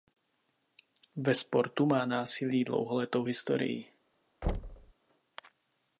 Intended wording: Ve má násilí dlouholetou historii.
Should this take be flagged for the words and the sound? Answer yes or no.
yes